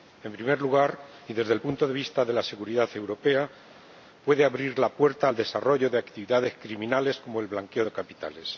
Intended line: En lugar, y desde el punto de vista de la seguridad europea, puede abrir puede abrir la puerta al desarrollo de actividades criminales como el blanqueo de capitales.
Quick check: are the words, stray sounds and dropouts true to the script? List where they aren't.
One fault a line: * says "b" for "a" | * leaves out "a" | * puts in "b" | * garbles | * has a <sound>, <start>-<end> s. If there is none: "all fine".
* puts in "primer"
* leaves out "puede abrir"